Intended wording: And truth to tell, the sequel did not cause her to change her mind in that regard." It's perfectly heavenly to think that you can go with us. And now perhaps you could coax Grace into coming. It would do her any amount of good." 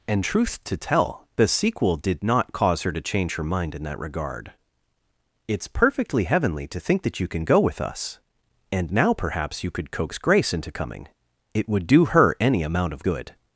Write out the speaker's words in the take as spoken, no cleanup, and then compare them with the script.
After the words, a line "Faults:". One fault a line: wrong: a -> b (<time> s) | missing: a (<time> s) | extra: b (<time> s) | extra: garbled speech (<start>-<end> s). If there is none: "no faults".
And truth to tell, the sequel did not cause her to change her mind in that regard." It's perfectly heavenly to think that you can go with us. And now perhaps you could coax Grace into coming. It would do her any amount of good."
Faults:
no faults